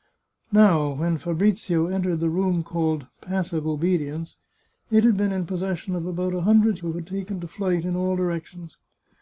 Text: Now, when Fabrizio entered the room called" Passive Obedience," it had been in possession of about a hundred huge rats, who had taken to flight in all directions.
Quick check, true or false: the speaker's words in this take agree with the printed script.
false